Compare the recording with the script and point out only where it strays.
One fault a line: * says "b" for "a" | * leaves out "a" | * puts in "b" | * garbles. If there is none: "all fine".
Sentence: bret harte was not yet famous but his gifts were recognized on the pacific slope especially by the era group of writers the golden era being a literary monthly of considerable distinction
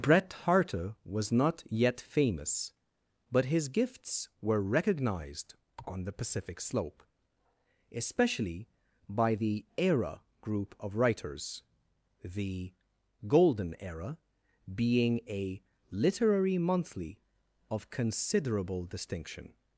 all fine